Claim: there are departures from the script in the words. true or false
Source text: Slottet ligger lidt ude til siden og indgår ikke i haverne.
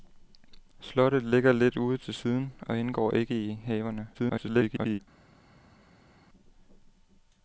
true